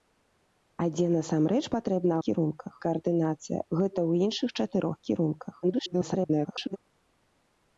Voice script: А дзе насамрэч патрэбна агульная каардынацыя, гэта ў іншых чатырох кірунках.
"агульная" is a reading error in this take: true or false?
true